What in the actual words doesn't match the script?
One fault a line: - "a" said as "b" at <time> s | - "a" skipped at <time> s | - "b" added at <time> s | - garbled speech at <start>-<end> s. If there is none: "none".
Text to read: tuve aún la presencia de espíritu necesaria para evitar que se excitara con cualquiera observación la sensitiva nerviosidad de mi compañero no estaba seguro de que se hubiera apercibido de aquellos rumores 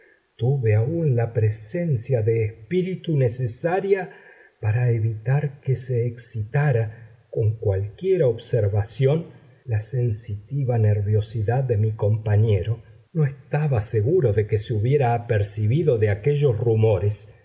none